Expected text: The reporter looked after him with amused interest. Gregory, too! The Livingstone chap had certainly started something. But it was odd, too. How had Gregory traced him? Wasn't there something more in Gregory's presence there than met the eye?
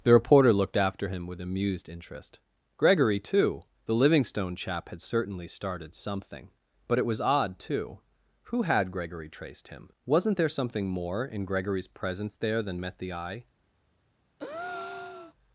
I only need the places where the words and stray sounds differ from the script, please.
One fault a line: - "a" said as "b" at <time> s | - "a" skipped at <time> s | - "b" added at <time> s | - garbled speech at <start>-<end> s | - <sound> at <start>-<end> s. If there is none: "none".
- "How" said as "Who" at 8.4 s
- breath at 14.4-15.3 s